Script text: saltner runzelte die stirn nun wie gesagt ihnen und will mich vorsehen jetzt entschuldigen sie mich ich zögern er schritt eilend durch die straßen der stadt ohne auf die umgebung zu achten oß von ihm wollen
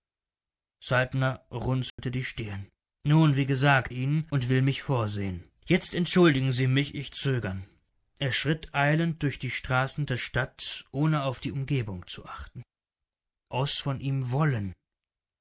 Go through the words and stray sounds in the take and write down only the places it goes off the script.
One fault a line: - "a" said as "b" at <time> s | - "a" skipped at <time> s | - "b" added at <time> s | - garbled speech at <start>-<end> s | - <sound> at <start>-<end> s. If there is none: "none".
- dropout at 1.9-2.0 s